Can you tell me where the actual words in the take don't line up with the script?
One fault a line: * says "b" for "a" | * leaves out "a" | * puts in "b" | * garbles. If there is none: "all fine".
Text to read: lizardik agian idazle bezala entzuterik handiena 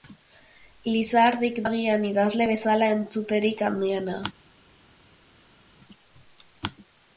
all fine